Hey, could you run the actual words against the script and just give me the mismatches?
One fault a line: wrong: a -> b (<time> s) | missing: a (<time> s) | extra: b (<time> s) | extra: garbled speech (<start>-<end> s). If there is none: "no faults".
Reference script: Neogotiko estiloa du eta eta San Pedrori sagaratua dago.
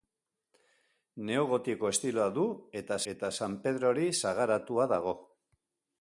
no faults